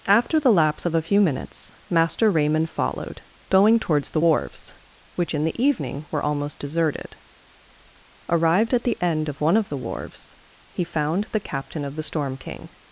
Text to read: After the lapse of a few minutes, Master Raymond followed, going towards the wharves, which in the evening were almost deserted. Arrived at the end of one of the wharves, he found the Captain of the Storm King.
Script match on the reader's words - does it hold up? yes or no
yes